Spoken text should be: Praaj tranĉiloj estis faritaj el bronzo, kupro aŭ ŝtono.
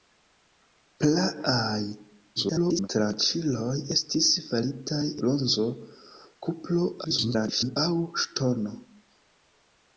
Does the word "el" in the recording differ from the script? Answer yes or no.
yes